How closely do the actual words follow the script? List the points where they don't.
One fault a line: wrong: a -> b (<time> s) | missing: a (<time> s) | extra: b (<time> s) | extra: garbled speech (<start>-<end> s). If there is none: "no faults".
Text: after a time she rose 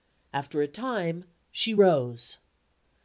no faults